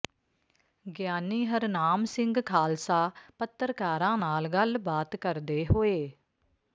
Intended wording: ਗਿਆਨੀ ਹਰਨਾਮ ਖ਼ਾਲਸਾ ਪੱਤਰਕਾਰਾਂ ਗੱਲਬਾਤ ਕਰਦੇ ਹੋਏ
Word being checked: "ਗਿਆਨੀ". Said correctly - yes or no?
yes